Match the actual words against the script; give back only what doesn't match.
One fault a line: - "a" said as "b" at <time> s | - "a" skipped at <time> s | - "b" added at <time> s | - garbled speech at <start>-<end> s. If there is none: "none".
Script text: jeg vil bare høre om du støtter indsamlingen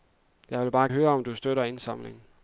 none